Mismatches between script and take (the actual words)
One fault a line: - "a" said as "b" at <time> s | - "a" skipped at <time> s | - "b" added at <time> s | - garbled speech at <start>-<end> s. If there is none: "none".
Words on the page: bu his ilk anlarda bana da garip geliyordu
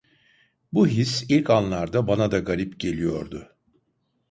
none